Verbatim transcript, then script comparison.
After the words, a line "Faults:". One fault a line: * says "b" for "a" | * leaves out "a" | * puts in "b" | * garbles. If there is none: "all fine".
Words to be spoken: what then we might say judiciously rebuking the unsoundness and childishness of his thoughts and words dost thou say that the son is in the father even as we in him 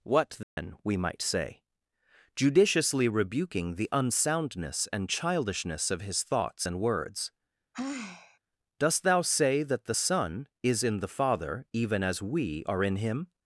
what then we might say judiciously rebuking the unsoundness and childishness of his thoughts and words dost thou say that the son is in the father even as we are in him
Faults:
* puts in "are"